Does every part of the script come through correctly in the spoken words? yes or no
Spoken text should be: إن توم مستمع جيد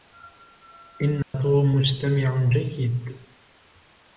yes